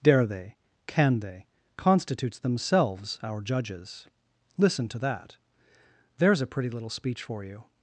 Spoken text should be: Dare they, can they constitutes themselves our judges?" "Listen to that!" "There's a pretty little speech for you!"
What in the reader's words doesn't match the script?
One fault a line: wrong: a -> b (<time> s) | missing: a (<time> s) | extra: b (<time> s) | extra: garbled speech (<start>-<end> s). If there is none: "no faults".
no faults